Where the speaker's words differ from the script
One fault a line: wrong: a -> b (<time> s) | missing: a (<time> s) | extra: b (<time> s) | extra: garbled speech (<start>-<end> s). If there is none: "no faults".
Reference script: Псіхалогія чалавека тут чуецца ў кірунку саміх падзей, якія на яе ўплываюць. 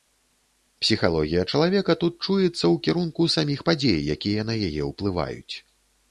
no faults